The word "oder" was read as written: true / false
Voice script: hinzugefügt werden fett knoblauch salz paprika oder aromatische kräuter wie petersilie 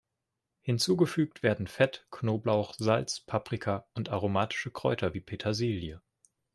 false